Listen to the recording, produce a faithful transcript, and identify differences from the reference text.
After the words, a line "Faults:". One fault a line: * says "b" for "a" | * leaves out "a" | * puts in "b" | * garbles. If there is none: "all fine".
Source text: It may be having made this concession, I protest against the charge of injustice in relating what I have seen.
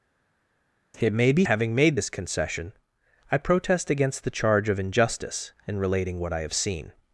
It may be having made this concession, I protest against the charge of injustice in relating what I have seen.
Faults:
all fine